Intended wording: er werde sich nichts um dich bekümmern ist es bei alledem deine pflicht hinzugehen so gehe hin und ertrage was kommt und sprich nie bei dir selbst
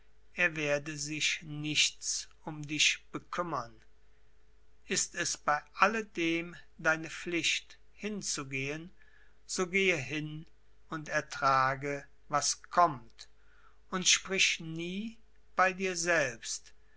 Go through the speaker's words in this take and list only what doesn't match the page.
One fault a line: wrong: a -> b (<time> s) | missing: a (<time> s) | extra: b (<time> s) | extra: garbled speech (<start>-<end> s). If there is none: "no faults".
no faults